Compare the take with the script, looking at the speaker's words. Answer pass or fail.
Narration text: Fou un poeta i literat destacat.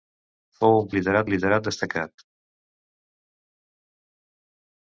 fail